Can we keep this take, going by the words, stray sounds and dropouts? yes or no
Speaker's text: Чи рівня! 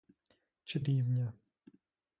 yes